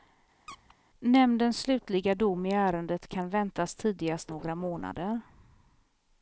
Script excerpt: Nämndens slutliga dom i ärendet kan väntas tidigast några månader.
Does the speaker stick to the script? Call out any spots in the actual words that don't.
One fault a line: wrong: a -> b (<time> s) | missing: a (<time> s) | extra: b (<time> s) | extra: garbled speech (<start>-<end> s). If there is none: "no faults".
no faults